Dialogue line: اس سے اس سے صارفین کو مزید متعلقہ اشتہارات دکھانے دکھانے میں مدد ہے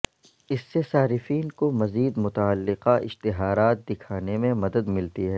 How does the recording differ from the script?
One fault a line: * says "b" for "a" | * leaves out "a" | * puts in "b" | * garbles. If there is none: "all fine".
* leaves out "اس سے"
* leaves out "دکھانے"
* puts in "ملتی"